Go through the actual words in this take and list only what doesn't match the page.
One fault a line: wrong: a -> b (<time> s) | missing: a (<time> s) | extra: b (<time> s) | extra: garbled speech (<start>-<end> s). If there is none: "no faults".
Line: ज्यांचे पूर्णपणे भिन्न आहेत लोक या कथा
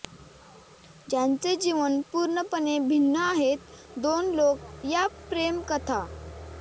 extra: जीवन (1.6 s)
extra: दोन (4.0 s)
extra: प्रेम (5.3 s)